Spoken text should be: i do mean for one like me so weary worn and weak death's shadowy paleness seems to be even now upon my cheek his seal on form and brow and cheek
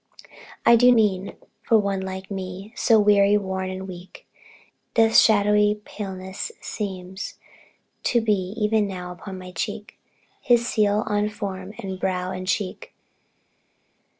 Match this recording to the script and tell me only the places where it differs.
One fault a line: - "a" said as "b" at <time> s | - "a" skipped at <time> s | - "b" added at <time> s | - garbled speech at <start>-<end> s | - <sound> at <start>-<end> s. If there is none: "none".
none